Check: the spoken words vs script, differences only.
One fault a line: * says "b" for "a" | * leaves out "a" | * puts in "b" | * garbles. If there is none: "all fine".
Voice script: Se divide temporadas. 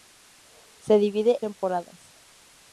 all fine